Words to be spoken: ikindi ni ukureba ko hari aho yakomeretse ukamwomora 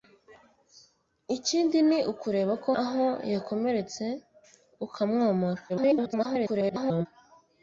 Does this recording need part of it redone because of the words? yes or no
yes